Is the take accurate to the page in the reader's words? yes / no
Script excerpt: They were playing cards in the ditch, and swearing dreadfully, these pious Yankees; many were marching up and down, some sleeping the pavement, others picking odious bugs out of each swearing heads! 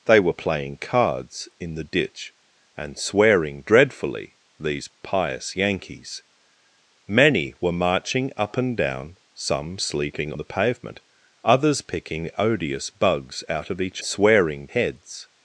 yes